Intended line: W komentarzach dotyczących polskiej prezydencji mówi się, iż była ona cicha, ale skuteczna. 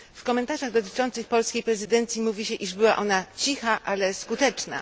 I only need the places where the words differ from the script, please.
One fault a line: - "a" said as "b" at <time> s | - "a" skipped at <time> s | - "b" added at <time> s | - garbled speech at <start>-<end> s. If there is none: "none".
none